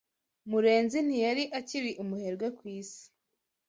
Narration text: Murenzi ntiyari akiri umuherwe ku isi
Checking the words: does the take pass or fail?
pass